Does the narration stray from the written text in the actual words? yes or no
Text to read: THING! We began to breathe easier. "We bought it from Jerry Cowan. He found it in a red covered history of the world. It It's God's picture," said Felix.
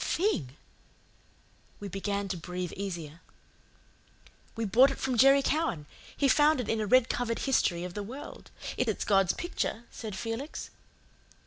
no